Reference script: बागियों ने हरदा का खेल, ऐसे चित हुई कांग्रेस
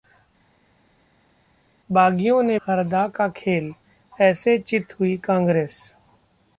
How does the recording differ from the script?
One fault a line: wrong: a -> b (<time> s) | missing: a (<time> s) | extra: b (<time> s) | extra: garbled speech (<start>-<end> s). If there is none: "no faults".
no faults